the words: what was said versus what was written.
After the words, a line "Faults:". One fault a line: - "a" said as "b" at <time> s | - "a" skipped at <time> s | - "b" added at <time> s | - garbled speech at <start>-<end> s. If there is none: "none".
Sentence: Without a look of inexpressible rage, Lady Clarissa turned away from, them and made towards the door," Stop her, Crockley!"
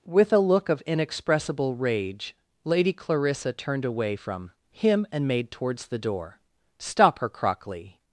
With a look of inexpressible rage, Lady Clarissa turned away from, him and made towards the door," Stop her, Crockley!"
Faults:
- "Without" said as "With" at 0.1 s
- "them" said as "him" at 4.7 s